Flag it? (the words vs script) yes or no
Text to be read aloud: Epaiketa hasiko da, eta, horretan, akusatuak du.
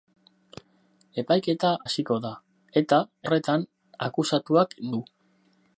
no